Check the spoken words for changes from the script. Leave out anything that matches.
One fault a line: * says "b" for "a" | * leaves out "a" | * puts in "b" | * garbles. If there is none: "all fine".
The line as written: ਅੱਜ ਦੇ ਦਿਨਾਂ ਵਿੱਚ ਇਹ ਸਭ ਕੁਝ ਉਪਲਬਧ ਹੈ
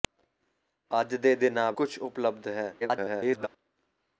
* leaves out "ਵਿੱਚ ਇਹ ਸਭ"
* garbles